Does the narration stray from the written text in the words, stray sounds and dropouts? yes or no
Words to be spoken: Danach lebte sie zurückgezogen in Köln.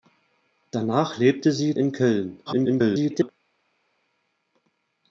yes